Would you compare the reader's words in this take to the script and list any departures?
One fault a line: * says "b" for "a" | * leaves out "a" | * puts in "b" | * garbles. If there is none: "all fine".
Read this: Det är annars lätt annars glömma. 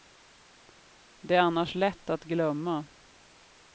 * says "att" for "annars"